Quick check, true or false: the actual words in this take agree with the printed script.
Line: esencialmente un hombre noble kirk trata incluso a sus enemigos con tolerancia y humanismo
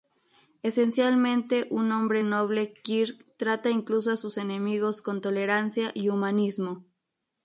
true